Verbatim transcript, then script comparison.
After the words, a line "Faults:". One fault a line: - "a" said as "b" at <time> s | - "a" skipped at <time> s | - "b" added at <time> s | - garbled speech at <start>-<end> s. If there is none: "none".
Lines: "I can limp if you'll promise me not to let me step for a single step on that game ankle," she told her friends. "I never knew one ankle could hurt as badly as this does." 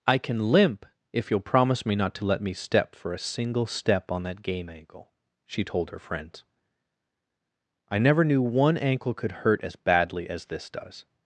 "I can limp if you'll promise me not to let me step for a single step on that game ankle," she told her friends. "I never knew one ankle could hurt as badly as this does."
Faults:
none